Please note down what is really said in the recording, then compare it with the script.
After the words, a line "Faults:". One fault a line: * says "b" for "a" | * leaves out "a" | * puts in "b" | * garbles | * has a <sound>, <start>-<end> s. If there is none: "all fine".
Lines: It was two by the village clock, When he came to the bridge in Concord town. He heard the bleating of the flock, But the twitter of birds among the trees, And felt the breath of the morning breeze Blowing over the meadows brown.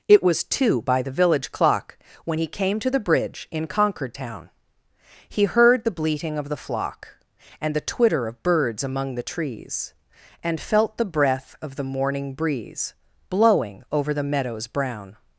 It was two by the village clock, When he came to the bridge in Concord town. He heard the bleating of the flock, And the twitter of birds among the trees, And felt the breath of the morning breeze Blowing over the meadows brown.
Faults:
* says "And" for "But"